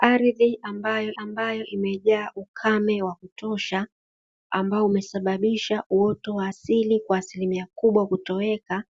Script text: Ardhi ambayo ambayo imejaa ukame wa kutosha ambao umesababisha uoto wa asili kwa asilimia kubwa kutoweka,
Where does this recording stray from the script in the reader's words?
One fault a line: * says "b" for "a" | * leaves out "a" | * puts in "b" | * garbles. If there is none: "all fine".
all fine